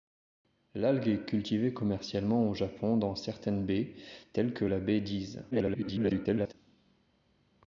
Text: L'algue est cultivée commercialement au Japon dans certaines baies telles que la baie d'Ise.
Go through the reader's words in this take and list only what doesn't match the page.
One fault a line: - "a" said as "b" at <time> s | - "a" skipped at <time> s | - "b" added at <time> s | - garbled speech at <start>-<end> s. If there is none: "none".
- garbled speech at 5.5-6.5 s